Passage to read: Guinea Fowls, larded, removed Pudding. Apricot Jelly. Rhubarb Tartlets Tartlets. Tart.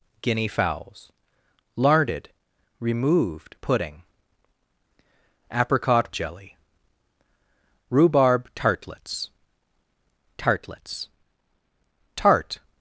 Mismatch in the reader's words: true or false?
false